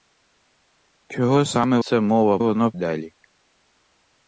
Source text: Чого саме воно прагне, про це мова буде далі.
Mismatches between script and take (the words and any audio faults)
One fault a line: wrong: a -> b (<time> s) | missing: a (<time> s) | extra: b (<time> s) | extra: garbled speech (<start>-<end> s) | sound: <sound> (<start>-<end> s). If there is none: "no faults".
missing: воно прагне про (1.8 s)
wrong: буде -> воно (2.4 s)